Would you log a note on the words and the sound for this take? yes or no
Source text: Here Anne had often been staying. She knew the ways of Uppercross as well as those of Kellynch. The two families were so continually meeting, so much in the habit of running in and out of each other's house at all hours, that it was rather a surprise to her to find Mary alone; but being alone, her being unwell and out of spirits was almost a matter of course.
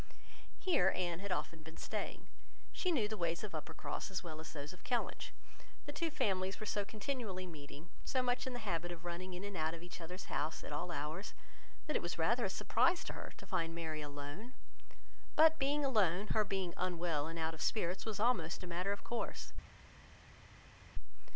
no